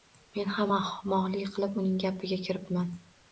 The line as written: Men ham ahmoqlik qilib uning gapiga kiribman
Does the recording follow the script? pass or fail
pass